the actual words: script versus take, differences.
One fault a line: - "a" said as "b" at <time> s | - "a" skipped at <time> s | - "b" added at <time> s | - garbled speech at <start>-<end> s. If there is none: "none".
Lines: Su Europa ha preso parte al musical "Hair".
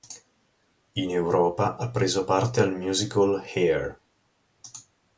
- "Su" said as "In" at 0.9 s